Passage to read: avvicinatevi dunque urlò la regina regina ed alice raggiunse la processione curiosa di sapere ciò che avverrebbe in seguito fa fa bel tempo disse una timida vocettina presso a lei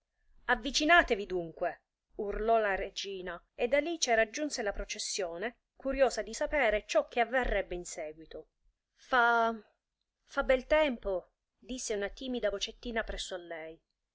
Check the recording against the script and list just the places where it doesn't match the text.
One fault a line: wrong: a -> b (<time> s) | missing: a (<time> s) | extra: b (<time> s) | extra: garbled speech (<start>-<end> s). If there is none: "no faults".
missing: regina (3.4 s)